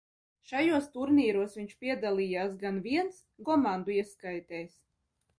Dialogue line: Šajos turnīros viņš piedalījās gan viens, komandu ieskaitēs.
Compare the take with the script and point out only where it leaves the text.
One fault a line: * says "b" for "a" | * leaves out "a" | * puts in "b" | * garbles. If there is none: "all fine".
all fine